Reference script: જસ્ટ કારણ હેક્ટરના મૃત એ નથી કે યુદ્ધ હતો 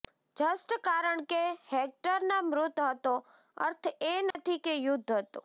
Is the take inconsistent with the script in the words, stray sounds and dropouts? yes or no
yes